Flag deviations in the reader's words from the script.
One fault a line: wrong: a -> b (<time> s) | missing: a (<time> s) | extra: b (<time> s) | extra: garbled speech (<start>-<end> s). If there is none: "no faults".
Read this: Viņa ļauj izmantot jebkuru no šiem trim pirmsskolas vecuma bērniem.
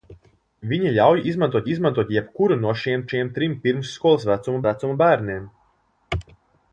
extra: izmantot (1.7 s)
extra: šiem (3.1 s)
extra: vecuma (4.7 s)